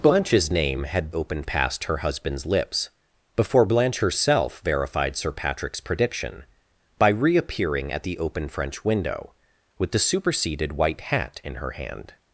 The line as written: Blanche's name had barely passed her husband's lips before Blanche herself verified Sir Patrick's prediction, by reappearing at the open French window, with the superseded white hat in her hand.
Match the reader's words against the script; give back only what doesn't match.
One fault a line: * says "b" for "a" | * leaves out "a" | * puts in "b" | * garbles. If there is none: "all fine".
* says "open" for "barely"